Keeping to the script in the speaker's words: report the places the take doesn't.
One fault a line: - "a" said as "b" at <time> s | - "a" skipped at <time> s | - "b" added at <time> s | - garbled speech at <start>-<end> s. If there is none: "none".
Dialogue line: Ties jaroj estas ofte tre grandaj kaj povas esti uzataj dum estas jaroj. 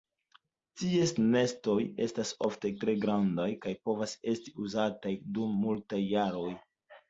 - "jaroj" said as "nestoj" at 1.4 s
- "estas" said as "multaj" at 5.7 s